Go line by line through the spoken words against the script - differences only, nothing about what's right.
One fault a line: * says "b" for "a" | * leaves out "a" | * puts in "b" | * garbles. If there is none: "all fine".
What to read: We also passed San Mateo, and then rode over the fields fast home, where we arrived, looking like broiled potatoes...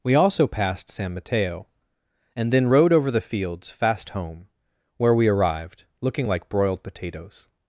all fine